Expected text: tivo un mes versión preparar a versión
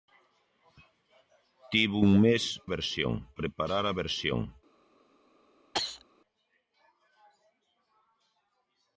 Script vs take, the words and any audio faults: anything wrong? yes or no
yes